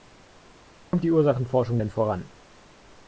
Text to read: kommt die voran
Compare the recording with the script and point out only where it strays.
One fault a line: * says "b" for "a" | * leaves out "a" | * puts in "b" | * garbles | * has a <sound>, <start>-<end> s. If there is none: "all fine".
* has a dropout, 0.8-0.9 s
* puts in "ursachenforschung denn"